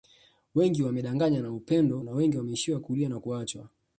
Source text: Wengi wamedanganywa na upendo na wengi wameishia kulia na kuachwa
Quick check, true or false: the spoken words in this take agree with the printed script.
true